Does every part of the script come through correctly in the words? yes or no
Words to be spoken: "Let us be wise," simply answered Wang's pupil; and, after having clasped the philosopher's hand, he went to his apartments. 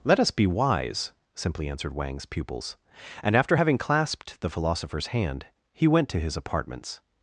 no